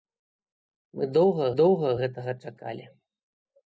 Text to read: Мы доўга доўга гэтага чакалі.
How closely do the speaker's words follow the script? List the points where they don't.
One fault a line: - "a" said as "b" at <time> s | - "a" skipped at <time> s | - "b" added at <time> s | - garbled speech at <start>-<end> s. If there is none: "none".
none